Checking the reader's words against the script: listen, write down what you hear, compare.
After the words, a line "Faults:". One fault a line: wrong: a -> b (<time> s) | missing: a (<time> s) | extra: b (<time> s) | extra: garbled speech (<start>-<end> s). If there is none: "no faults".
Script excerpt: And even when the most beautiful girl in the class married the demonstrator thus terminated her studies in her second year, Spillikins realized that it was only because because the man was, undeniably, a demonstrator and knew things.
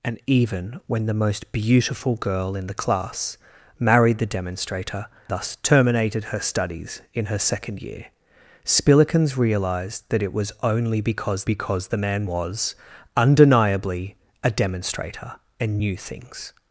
And even when the most beautiful girl in the class married the demonstrator thus terminated her studies in her second year, Spillikins realized that it was only because because the man was, undeniably, a demonstrator and knew things.
Faults:
no faults